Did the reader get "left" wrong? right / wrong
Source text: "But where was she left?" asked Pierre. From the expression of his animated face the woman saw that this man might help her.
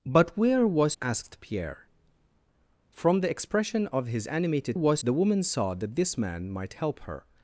wrong